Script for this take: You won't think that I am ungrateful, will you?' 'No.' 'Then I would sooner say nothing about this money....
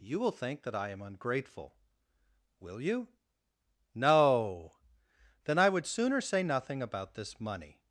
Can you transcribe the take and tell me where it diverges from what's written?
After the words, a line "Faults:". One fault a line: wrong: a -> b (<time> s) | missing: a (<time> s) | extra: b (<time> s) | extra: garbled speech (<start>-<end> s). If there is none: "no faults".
You will think that I am ungrateful, will you?' 'No.' 'Then I would sooner say nothing about this money....
Faults:
wrong: won't -> will (0.2 s)